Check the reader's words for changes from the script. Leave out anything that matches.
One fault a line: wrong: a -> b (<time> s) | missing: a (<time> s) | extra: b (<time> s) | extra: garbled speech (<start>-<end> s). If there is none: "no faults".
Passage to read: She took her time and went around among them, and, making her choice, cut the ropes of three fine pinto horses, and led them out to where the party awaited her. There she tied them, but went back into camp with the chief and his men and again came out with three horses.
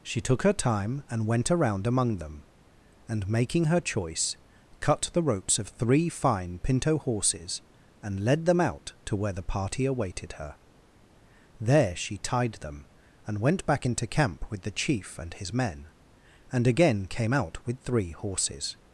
wrong: but -> and (13.3 s)